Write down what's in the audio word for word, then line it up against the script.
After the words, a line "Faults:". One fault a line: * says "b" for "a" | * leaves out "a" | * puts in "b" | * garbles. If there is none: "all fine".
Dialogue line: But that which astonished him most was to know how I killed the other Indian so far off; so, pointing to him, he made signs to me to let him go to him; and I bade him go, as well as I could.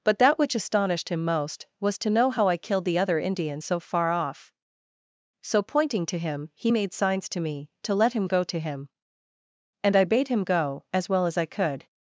But that which astonished him most was to know how I killed the other Indian so far off; so, pointing to him, he made signs to me to let him go to him; and I bade him go, as well as I could.
Faults:
all fine